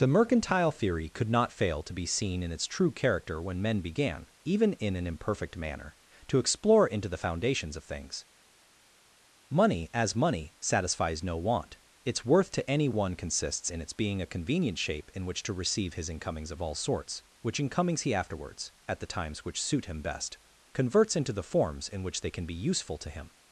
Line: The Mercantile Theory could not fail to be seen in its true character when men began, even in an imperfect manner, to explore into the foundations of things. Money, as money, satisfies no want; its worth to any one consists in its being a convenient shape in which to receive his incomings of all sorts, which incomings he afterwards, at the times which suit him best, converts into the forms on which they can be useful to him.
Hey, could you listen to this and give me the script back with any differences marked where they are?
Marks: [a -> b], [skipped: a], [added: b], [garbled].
The Mercantile Theory could not fail to be seen in its true character when men began, even in an imperfect manner, to explore into the foundations of things. Money, as money, satisfies no want; its worth to any one consists in its being a convenient shape in which to receive his incomings of all sorts, which incomings he afterwards, at the times which suit him best, converts into the forms [on -> in] which they can be useful to him.